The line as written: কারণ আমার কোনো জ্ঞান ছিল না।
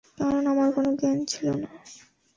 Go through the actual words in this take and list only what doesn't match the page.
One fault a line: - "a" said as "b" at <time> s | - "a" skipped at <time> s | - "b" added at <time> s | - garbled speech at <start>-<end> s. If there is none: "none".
none